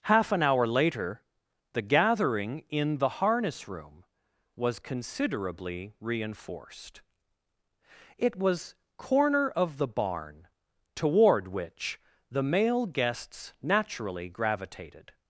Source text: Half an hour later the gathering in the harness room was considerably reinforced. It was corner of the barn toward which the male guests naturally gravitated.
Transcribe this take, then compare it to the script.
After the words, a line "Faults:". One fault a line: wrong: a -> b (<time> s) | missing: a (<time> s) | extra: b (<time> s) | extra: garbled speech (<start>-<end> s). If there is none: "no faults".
Half an hour later the gathering in the harness room was considerably reinforced. It was corner of the barn toward which the male guests naturally gravitated.
Faults:
no faults